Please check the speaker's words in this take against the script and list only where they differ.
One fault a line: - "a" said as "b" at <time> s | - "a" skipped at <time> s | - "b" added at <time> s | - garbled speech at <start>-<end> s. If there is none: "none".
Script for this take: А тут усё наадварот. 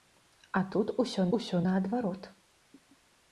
- "усё" added at 1.4 s